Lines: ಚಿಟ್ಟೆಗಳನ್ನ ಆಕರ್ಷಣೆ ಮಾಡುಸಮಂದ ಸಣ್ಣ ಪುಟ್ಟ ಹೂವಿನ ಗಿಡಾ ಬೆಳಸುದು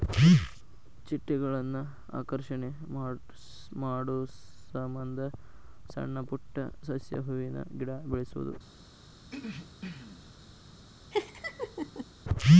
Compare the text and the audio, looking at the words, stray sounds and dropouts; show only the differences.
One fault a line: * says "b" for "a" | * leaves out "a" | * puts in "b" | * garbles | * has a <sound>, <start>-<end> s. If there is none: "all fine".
* puts in "ಸಸ್ಯ"
* has a throat clearing, 9.2-10.4 s
* has a laugh, 11.1-12.1 s